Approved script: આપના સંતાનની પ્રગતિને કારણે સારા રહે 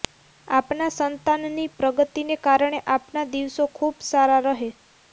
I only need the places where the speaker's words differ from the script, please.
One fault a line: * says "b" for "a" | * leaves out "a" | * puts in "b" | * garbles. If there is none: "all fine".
* puts in "આપના દિવસો ખૂબ"